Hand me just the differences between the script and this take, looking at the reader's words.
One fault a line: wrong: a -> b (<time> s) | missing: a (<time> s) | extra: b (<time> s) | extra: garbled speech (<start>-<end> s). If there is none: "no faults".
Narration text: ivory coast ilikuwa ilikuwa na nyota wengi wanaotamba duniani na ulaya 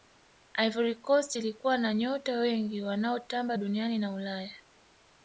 missing: ilikuwa (1.8 s)